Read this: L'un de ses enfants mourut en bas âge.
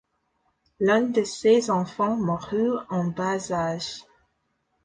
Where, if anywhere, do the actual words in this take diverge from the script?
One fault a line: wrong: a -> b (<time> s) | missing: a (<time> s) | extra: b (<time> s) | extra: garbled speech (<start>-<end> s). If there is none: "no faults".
no faults